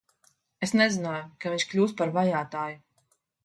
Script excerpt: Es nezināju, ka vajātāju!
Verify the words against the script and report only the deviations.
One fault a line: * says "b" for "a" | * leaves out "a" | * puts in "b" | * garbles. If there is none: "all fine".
* puts in "viņš kļūs par"